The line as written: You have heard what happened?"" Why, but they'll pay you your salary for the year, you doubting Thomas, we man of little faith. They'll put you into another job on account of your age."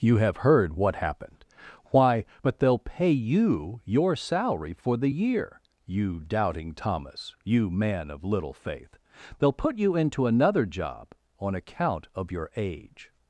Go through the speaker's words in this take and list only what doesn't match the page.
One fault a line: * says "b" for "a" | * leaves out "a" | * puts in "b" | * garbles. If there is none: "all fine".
* says "you" for "we"